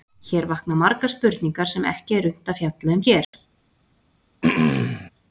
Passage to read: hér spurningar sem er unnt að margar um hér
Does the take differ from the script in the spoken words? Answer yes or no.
yes